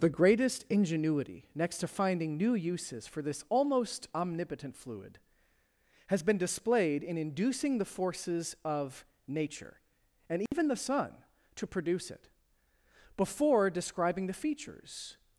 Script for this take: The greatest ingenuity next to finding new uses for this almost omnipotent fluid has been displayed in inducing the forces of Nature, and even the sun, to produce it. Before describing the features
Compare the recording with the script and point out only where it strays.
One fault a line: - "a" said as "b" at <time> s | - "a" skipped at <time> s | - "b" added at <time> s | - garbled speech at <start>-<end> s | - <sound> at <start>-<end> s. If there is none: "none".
- dropout at 10.5-10.5 s